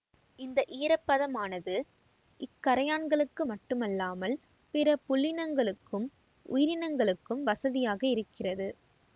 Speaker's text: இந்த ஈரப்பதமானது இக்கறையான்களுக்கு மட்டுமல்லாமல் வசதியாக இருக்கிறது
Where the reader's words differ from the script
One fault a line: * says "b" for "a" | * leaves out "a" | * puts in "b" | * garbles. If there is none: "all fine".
* puts in "பிற புல்லினங்களுக்கும் உயிரினங்களுக்கும்"